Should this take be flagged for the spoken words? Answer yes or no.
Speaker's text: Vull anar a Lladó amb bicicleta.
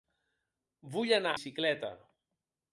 yes